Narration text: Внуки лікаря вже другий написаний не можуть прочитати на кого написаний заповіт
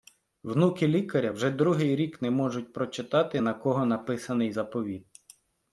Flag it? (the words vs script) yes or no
yes